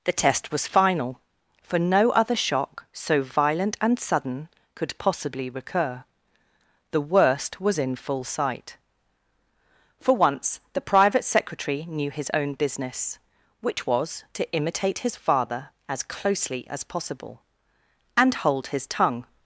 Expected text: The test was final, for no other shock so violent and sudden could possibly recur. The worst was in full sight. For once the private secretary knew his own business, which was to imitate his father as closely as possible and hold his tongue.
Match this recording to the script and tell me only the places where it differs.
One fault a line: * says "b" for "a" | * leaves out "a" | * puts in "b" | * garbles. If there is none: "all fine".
all fine